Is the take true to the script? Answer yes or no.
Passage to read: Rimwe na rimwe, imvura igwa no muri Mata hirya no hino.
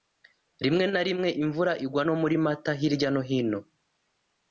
yes